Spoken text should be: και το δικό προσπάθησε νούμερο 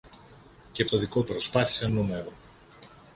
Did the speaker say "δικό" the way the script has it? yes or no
yes